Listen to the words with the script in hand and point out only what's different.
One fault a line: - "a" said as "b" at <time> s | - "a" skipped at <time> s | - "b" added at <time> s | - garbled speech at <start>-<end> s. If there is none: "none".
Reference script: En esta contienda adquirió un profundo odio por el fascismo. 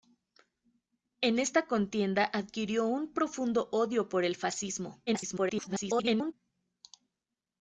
- garbled speech at 5.1-6.3 s